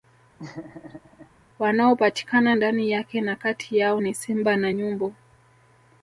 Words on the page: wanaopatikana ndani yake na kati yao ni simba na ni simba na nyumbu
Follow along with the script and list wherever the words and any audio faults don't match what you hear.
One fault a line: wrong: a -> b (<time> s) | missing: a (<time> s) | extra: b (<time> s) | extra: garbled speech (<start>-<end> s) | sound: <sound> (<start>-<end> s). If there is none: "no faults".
sound: laugh (0.4-1.3 s)
missing: ni simba na (4.7 s)